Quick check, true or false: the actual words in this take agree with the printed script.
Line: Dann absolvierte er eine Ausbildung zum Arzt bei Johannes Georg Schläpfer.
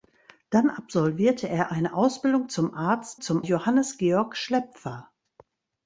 false